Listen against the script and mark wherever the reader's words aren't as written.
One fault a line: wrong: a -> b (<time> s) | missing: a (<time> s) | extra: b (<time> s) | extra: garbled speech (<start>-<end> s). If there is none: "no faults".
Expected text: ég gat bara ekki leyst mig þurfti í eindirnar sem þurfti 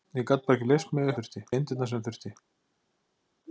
no faults